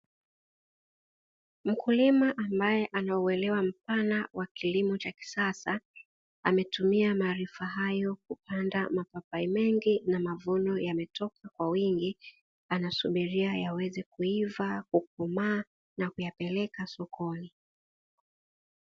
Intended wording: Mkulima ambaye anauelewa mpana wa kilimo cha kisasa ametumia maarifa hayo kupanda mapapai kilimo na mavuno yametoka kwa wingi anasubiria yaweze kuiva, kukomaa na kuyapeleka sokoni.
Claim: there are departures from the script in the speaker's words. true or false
true